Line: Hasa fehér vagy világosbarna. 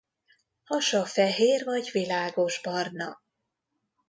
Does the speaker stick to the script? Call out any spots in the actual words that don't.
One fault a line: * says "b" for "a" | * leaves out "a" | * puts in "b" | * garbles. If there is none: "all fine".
all fine